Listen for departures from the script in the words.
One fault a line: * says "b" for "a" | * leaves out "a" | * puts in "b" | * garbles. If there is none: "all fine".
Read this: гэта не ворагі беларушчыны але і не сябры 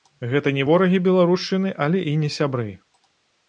all fine